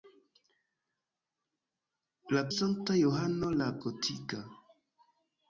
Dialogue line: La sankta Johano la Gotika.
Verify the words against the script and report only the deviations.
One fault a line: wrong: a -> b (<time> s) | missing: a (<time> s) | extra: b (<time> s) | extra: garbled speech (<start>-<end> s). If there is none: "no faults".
no faults